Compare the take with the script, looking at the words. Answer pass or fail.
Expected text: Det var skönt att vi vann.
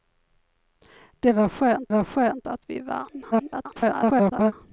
fail